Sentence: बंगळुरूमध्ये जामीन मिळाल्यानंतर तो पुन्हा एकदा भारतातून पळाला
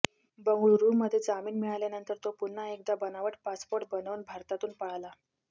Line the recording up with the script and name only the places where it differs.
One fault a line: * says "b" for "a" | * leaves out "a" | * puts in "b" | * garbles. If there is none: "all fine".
* puts in "बनावट पासपोर्ट बनवून"